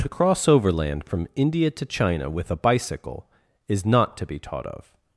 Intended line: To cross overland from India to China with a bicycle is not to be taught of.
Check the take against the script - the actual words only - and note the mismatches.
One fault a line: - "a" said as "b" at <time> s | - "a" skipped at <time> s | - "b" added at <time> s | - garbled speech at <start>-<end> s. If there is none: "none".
none